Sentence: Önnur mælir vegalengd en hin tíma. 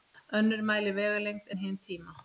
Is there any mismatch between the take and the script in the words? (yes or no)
no